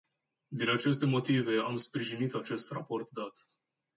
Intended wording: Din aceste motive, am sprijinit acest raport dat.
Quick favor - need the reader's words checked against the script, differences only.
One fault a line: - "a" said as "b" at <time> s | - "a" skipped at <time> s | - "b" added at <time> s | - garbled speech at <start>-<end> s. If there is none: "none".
none